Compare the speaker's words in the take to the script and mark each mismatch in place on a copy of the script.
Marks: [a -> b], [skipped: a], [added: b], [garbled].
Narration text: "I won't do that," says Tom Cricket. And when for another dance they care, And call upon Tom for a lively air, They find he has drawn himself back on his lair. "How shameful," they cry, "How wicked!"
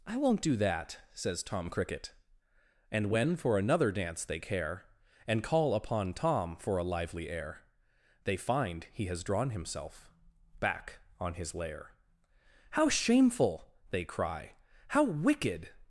"I won't do that," says Tom Cricket. And when for another dance they care, And call upon Tom for a lively air, They find he has drawn himself back on his lair. "How shameful," they cry, "How wicked!"